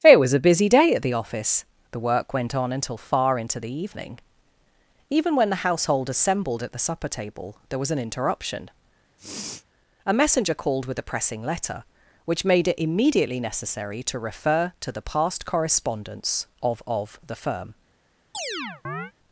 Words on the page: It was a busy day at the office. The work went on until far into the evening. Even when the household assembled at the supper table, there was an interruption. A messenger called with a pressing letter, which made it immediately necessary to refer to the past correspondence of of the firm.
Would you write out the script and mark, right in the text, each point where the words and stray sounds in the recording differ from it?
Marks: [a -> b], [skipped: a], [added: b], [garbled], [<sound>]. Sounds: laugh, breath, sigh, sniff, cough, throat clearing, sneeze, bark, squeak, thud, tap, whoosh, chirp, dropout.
It was a busy day at the office. The work went on until far into the evening. Even when the household assembled at the supper table, there was an interruption. [sniff] A messenger called with a pressing letter, which made it immediately necessary to refer to the past correspondence of of the firm. [chirp]